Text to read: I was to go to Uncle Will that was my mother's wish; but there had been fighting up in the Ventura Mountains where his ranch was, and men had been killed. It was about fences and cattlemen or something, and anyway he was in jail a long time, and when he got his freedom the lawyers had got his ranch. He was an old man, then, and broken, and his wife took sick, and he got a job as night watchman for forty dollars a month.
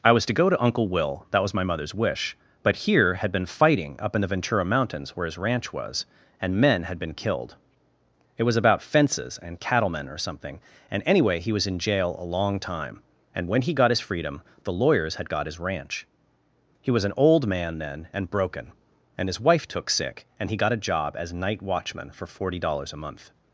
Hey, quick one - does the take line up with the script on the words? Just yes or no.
no